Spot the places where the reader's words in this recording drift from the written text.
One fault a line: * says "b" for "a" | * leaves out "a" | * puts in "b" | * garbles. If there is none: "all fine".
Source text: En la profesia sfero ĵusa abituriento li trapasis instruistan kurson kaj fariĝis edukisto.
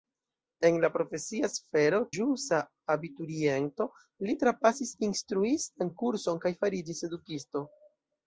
all fine